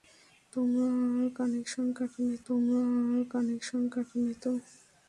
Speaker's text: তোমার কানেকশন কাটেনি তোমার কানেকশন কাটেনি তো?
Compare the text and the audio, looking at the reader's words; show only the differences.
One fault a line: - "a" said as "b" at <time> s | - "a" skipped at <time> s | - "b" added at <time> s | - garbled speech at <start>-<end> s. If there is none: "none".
none